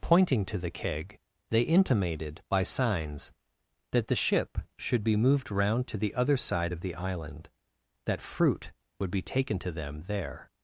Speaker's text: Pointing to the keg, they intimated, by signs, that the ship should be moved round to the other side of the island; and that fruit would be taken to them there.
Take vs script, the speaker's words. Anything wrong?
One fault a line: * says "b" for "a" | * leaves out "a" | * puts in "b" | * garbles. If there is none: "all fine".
* leaves out "and"